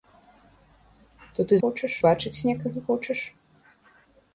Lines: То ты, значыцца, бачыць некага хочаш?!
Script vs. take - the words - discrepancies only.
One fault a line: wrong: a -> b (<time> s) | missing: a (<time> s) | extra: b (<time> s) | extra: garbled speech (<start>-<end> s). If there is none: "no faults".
wrong: значыцца -> хочаш (1.7 s)